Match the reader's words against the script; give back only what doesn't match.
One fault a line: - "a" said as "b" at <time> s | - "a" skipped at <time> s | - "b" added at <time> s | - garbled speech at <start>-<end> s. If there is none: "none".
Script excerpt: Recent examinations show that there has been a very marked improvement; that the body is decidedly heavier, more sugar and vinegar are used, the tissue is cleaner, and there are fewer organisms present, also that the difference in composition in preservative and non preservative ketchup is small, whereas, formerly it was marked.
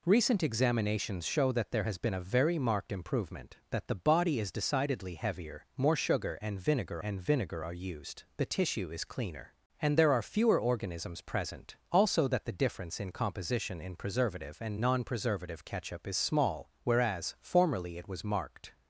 - "and vinegar" added at 7.0 s